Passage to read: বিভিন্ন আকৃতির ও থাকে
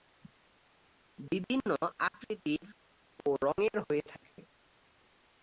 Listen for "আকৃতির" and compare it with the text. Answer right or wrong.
right